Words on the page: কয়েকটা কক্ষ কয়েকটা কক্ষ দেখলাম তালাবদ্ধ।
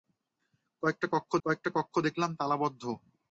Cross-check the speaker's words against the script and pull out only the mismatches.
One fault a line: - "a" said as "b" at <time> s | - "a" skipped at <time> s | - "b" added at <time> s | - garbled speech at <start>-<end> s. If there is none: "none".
none